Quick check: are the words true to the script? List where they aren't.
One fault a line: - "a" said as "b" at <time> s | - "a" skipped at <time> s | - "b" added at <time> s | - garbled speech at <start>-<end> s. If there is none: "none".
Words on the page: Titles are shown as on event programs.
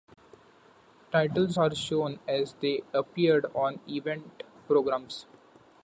- "they appeared" added at 2.6 s